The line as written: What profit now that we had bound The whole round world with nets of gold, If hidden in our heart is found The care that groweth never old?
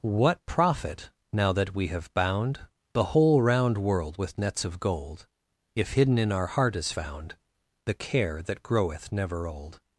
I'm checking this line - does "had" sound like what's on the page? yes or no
no